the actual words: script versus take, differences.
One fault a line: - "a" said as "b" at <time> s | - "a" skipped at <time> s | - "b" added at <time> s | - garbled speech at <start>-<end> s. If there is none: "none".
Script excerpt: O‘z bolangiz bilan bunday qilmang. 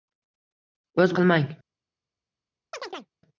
- "bolangiz bilan bunday" skipped at 1.1 s